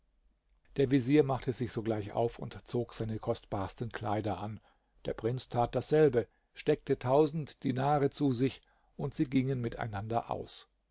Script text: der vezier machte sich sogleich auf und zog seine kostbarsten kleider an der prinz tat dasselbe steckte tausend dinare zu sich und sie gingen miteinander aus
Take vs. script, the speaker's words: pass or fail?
pass